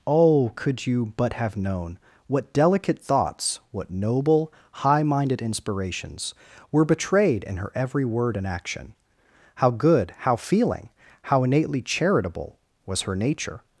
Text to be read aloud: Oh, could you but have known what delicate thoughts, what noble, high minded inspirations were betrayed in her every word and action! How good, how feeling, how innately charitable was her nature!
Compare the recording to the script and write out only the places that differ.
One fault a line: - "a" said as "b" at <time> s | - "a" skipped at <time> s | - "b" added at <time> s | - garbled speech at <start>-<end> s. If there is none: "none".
none